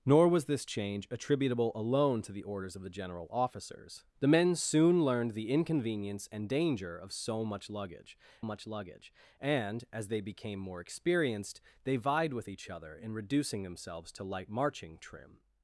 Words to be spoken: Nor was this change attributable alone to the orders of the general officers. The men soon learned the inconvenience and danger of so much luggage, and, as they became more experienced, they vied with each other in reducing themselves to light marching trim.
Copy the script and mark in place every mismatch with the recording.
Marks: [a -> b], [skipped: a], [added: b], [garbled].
Nor was this change attributable alone to the orders of the general officers. The men soon learned the inconvenience and danger of so much luggage, [added: much luggage] and, as they became more experienced, they vied with each other in reducing themselves to light marching trim.